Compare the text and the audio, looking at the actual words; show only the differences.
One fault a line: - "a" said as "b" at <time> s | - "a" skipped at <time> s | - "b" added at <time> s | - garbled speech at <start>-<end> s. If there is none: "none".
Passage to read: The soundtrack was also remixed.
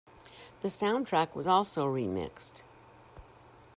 none